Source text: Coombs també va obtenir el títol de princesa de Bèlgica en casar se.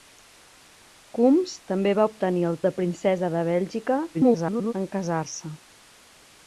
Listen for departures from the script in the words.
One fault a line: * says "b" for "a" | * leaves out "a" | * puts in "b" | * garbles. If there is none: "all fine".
* leaves out "títol"
* garbles